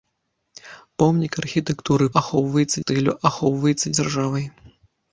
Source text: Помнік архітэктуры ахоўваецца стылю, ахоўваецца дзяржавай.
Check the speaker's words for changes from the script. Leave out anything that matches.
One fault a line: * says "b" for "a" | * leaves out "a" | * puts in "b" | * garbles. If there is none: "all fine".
all fine